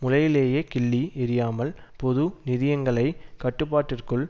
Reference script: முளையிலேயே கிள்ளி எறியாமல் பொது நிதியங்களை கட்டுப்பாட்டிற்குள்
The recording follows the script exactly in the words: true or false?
true